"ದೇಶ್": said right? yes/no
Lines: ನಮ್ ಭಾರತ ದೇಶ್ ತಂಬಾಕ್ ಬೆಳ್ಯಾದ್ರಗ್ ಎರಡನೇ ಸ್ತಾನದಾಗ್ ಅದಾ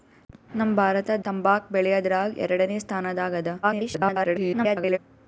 no